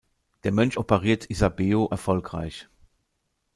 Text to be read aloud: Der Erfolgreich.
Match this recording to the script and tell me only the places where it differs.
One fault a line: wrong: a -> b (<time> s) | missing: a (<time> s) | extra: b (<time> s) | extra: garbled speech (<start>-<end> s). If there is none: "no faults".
extra: Mönch operiert Isabeau (0.5 s)